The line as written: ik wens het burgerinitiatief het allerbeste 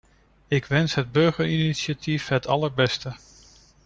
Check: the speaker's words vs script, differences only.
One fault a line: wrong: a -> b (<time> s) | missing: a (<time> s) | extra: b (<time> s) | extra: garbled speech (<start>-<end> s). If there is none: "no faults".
no faults